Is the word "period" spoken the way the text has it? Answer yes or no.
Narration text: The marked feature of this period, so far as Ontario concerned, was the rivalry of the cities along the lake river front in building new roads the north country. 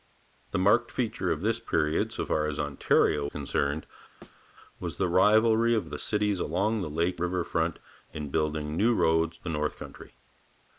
yes